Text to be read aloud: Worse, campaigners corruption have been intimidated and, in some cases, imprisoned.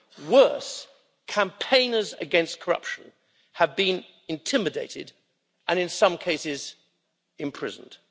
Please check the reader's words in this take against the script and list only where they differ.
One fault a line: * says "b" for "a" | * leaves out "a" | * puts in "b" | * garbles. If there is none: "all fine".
* puts in "against"